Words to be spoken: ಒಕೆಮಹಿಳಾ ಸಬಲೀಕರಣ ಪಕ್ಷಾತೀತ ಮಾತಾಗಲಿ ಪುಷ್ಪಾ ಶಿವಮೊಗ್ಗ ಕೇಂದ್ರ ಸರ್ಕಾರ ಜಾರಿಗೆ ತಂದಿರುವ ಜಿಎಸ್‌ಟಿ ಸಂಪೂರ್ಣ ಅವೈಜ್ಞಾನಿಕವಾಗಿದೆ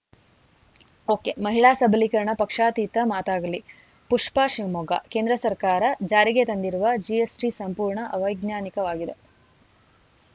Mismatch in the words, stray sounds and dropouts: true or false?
false